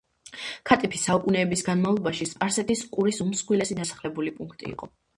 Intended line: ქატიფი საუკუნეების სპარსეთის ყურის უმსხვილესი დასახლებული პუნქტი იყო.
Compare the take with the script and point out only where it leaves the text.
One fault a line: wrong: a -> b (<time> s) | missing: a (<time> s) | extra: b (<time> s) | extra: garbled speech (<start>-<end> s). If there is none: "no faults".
extra: განმავლობაში (1.7 s)